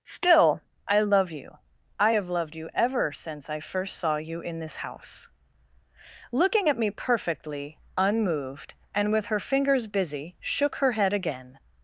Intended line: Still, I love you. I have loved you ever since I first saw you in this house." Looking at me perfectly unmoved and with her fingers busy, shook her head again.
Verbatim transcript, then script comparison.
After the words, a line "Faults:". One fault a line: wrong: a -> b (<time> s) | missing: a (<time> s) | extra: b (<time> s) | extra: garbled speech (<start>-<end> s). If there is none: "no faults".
Still, I love you. I have loved you ever since I first saw you in this house." Looking at me perfectly unmoved and with her fingers busy, shook her head again.
Faults:
no faults